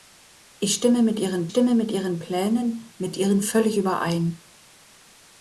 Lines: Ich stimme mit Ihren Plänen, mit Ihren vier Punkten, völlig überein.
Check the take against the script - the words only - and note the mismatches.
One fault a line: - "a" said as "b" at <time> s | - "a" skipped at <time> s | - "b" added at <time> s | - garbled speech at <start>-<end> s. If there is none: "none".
- "Plänen" said as "stimme" at 1.5 s
- "vier Punkten" said as "Plänen mit Ihren" at 2.2 s